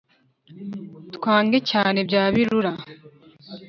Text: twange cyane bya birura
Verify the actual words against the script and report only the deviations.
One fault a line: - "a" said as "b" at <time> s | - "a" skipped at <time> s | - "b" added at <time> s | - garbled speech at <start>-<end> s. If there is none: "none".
none